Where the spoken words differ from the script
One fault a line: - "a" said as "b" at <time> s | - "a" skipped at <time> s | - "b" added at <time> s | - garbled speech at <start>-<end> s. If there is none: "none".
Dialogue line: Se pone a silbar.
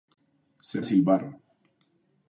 - "pone" skipped at 0.8 s